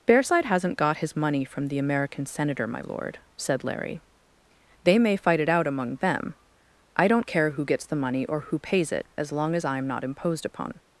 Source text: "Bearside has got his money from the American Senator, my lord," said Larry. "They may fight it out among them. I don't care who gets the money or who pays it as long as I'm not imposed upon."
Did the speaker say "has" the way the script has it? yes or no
no